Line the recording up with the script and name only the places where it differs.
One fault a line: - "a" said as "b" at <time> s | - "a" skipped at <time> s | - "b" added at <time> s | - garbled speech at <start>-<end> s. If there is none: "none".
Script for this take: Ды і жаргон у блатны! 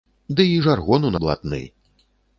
none